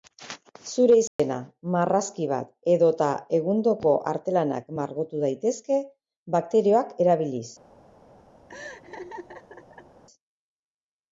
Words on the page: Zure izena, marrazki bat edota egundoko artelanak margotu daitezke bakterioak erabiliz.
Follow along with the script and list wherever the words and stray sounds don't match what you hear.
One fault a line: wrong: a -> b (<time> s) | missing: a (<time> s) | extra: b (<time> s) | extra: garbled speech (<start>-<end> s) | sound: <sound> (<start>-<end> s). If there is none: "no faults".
sound: dropout (1.1-1.2 s)
sound: laugh (8.5-10.0 s)